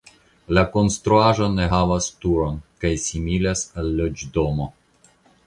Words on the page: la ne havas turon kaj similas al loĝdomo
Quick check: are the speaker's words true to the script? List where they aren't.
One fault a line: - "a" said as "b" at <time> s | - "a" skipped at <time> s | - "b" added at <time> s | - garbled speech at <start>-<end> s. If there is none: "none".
- "konstruaĵo" added at 0.8 s